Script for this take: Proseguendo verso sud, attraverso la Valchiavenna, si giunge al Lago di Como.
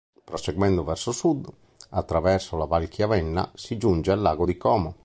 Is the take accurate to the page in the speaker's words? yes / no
yes